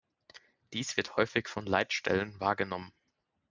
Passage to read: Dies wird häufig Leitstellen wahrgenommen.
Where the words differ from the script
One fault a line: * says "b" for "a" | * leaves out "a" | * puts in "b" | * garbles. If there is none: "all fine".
* puts in "von"